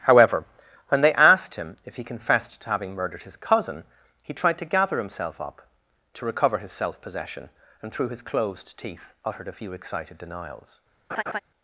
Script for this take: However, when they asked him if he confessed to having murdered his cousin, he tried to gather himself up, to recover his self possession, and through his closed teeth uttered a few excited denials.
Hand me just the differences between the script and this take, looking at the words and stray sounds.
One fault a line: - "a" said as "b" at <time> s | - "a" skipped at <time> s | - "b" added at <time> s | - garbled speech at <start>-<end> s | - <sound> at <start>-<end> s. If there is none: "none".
- laugh at 11.1-11.4 s